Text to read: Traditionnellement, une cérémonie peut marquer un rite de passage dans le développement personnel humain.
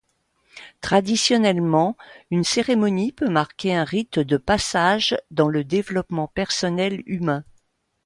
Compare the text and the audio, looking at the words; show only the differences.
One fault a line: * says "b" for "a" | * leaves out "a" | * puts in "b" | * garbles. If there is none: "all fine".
all fine